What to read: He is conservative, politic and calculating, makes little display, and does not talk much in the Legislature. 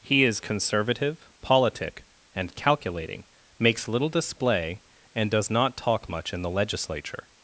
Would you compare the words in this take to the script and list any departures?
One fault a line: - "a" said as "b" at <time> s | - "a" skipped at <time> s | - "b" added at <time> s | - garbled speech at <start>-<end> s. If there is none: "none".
none